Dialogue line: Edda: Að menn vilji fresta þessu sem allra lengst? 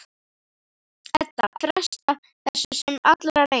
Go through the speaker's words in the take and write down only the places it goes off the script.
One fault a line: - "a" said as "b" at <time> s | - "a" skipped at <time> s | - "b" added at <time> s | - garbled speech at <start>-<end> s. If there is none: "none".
- "Að menn vilji" skipped at 1.5 s